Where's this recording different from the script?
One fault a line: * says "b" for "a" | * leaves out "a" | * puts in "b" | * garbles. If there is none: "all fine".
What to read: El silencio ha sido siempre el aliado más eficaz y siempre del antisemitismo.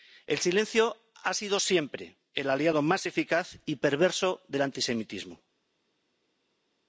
* says "perverso" for "siempre"